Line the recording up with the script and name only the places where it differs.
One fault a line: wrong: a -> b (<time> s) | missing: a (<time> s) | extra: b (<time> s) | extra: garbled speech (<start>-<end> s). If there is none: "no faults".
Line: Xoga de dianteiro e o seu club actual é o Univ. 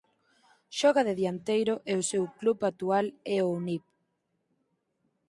no faults